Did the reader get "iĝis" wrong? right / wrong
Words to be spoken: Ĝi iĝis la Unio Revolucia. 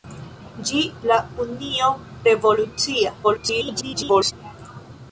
wrong